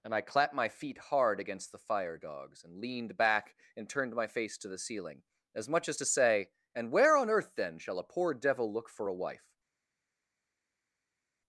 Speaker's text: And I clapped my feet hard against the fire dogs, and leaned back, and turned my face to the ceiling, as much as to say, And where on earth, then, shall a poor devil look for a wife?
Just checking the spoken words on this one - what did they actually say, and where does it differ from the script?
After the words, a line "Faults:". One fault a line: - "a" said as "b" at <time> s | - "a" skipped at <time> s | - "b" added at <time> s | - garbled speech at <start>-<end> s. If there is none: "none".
And I clapped my feet hard against the fire dogs, and leaned back, and turned my face to the ceiling, as much as to say, And where on earth, then, shall a poor devil look for a wife?
Faults:
none